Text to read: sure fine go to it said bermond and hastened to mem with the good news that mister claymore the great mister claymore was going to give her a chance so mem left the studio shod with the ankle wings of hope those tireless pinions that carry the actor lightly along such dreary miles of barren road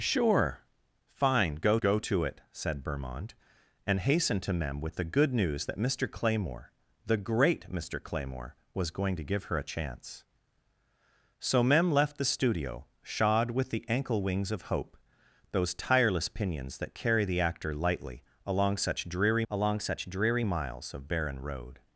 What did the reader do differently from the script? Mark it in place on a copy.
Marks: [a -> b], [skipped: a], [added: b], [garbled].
sure fine go [added: go] to it said bermond and hastened to mem with the good news that mister claymore the great mister claymore was going to give her a chance so mem left the studio shod with the ankle wings of hope those tireless pinions that carry the actor lightly along such dreary [added: along such dreary] miles of barren road